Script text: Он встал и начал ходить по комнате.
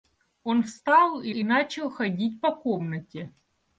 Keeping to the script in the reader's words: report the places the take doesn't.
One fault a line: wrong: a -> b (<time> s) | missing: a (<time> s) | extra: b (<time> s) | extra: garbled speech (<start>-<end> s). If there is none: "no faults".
extra: и (1.3 s)